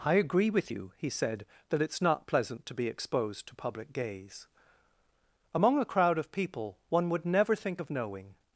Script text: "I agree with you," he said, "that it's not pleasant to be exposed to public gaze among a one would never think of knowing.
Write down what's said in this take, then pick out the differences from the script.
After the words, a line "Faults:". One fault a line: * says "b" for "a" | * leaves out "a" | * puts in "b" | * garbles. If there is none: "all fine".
"I agree with you," he said, "that it's not pleasant to be exposed to public gaze among a crowd of people one would never think of knowing.
Faults:
* puts in "crowd of people"